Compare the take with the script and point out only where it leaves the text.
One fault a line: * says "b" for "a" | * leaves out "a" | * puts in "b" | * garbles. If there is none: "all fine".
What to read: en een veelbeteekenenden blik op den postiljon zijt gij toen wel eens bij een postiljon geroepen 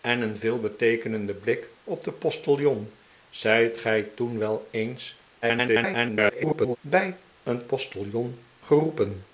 * garbles